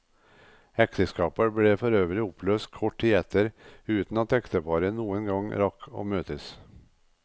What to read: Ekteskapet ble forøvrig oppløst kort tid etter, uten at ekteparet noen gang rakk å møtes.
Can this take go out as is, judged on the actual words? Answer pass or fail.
pass